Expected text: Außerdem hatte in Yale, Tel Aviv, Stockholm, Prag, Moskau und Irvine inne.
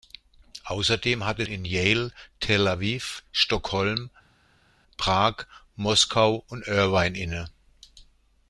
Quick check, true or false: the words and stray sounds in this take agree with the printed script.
true